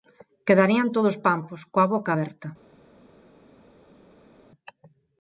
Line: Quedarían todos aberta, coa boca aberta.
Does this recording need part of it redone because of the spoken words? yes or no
yes